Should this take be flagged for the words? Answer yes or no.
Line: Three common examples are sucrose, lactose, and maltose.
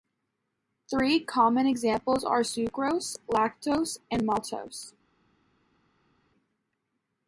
no